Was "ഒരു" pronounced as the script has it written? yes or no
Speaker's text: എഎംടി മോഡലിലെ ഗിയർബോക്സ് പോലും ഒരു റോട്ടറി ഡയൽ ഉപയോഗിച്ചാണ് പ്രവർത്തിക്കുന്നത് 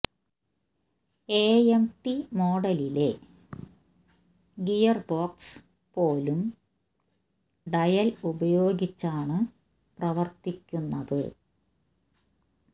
no